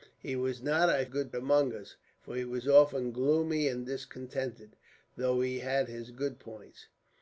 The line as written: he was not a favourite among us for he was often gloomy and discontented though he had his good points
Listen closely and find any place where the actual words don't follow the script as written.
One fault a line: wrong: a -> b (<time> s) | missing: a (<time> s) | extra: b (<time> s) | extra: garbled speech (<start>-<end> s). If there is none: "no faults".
wrong: favourite -> good (1.1 s)